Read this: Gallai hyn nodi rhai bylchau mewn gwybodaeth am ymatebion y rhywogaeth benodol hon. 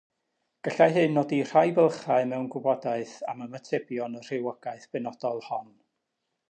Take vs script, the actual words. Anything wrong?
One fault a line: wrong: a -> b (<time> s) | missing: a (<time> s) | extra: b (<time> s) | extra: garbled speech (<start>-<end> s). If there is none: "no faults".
no faults